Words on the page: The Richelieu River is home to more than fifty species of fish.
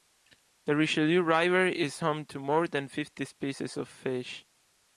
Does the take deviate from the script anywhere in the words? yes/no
no